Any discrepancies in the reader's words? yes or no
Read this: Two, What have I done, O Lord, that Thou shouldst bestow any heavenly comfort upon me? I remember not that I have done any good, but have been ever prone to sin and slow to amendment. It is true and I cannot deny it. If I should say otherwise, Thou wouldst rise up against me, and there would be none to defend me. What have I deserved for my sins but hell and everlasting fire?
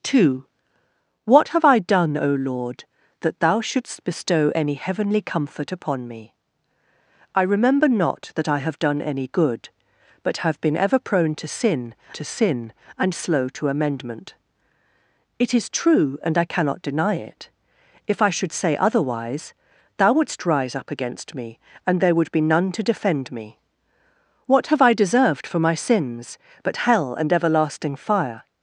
yes